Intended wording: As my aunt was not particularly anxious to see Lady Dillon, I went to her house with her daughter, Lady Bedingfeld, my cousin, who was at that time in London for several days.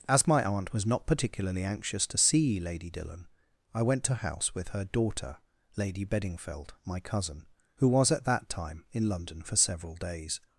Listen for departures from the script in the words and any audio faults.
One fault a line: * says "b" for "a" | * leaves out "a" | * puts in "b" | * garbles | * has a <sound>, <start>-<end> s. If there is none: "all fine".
* leaves out "her"